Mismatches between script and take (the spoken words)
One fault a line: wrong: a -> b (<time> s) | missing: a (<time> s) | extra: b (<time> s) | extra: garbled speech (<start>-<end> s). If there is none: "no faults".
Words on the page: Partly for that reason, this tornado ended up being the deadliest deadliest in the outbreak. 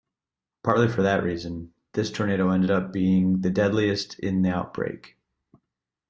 missing: deadliest (4.2 s)